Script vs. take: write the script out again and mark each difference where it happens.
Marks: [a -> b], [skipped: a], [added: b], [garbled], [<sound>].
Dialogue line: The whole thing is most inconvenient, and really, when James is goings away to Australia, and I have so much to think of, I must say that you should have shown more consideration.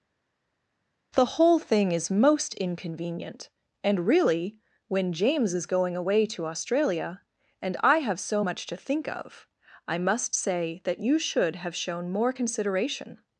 The whole thing is most inconvenient, and really, when James is [goings -> going] away to Australia, and I have so much to think of, I must say that you should have shown more consideration.